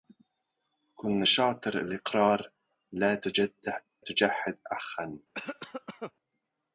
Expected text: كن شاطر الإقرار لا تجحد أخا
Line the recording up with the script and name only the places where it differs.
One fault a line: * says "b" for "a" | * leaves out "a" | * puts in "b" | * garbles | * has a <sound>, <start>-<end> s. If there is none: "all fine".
* leaves out "لا"
* has a cough, 5.3-6.1 s